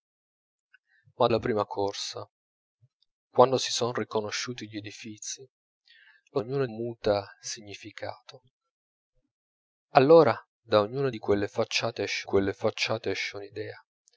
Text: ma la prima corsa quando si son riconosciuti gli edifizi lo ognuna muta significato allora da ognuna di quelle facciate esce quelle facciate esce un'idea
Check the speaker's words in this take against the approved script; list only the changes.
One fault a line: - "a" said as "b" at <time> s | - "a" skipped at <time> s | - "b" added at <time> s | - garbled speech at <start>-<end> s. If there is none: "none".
none